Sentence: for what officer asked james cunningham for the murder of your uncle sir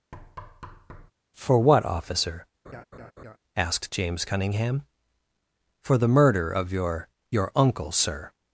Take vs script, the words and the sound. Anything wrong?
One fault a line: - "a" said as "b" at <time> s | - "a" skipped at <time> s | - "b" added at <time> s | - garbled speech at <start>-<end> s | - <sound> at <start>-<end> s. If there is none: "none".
- thud at 0.1-1.1 s
- laugh at 2.6-3.4 s
- "your" added at 7.3 s